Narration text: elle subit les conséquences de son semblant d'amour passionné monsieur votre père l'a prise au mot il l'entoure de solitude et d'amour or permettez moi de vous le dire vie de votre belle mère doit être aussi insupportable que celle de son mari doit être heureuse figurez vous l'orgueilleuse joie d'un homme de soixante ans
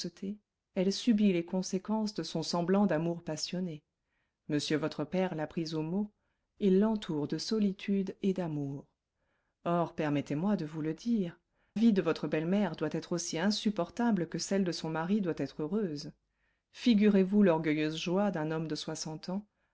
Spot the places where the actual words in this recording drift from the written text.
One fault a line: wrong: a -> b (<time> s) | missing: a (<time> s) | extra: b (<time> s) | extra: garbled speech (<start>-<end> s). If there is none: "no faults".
no faults